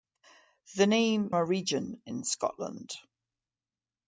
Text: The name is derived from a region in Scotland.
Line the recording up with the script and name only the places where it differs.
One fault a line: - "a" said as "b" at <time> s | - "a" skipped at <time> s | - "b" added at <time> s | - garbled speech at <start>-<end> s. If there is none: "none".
- "is derived from" skipped at 1.3 s